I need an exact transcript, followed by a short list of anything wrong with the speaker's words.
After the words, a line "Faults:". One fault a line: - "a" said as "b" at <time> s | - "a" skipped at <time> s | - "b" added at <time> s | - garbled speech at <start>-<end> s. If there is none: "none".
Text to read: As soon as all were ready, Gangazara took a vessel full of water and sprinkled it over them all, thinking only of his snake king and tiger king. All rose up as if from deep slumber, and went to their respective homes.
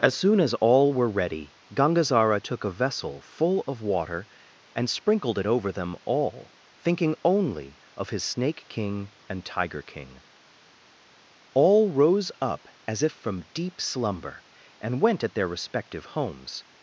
As soon as all were ready, Gangazara took a vessel full of water and sprinkled it over them all, thinking only of his snake king and tiger king. All rose up as if from deep slumber, and went at their respective homes.
Faults:
- "to" said as "at" at 15.2 s